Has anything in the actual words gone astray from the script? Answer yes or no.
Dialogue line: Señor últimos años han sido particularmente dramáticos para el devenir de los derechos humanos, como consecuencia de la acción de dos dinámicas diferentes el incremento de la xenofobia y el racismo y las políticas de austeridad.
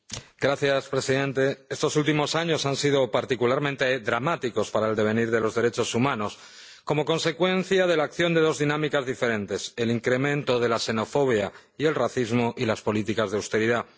yes